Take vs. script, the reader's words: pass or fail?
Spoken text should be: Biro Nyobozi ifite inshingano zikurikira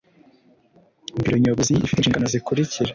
pass